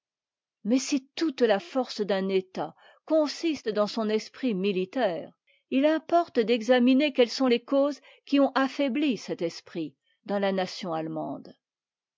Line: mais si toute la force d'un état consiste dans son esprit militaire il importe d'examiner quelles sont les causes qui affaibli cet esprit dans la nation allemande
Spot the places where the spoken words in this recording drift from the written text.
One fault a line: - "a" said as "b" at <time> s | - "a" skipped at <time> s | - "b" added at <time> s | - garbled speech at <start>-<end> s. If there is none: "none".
- "ont" added at 8.4 s